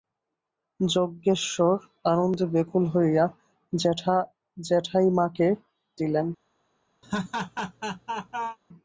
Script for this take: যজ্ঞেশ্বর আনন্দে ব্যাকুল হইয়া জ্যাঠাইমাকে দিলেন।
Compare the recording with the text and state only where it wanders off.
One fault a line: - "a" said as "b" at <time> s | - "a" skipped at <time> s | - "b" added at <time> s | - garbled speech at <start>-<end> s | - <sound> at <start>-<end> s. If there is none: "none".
- laugh at 7.0-8.6 s